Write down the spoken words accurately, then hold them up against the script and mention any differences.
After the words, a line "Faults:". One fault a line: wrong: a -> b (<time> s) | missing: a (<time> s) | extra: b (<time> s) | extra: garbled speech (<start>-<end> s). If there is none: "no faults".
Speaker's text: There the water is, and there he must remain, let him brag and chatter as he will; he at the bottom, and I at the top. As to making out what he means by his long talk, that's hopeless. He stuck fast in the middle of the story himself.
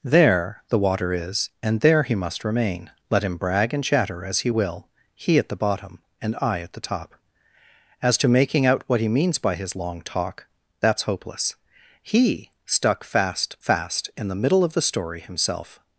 There the water is, and there he must remain, let him brag and chatter as he will; he at the bottom, and I at the top. As to making out what he means by his long talk, that's hopeless. He stuck fast fast in the middle of the story himself.
Faults:
extra: fast (13.6 s)